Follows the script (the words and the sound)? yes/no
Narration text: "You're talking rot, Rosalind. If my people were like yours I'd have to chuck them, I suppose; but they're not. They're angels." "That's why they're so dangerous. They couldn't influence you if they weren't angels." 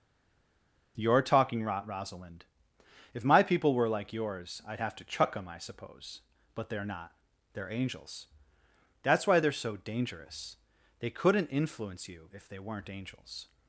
yes